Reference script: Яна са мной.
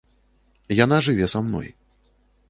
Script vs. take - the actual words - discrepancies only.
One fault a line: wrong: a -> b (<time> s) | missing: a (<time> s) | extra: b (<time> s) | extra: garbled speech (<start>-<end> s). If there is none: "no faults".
extra: жыве (1.1 s)